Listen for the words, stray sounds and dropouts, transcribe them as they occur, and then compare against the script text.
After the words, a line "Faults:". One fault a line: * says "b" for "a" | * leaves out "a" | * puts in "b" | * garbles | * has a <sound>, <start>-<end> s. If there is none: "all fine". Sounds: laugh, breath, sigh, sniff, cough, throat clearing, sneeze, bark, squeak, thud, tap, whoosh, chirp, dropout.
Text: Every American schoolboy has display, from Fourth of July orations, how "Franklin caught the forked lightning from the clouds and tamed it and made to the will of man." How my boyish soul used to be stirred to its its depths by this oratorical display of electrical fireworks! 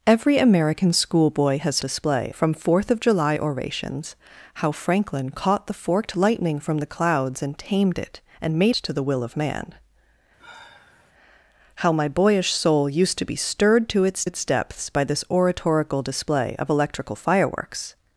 Every American schoolboy has display, from Fourth of July orations, how "Franklin caught the forked lightning from the clouds and tamed it and made to the will of man." How my boyish soul used to be stirred to its its depths by this oratorical display of electrical fireworks!
Faults:
* has a sigh, 10.4-11.1 s